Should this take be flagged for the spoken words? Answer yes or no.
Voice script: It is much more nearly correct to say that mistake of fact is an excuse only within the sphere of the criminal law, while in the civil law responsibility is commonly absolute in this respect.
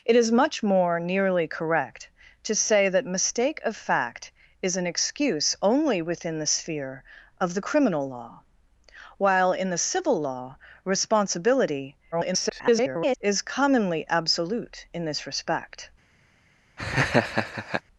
yes